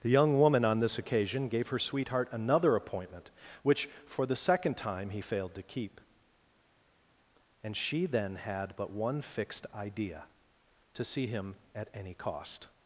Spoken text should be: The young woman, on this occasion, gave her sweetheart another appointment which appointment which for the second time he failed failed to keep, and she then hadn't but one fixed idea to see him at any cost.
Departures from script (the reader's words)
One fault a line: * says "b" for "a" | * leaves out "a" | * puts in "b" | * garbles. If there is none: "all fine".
* leaves out "appointment which"
* leaves out "failed"
* says "had" for "hadn't"